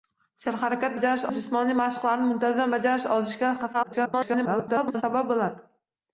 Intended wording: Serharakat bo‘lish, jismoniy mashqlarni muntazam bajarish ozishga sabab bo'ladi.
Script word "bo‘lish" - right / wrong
wrong